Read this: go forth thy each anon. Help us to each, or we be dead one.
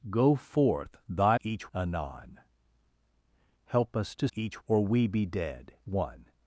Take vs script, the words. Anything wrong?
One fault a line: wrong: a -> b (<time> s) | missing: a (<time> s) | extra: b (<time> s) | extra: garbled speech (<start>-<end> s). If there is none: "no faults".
no faults